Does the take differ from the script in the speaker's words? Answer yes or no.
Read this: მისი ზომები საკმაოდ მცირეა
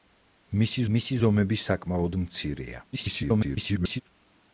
yes